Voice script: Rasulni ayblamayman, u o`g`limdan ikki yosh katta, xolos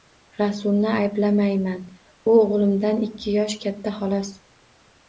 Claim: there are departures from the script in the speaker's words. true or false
false